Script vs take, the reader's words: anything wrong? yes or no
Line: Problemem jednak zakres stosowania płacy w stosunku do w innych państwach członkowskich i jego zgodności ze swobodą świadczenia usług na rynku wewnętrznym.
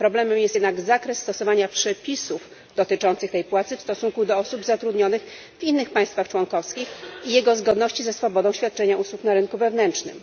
yes